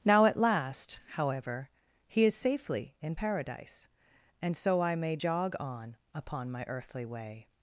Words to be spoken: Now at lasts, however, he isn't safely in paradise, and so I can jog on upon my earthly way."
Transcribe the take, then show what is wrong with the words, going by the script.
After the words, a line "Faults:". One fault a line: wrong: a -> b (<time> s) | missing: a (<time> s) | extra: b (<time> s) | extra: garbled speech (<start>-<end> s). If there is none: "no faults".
Now at last, however, he is safely in paradise, and so I may jog on upon my earthly way."
Faults:
wrong: lasts -> last (0.4 s)
wrong: isn't -> is (2.2 s)
wrong: can -> may (4.9 s)